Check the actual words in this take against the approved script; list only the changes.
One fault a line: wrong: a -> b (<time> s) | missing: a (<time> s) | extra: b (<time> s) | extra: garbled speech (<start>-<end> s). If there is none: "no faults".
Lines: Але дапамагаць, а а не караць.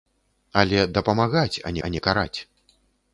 no faults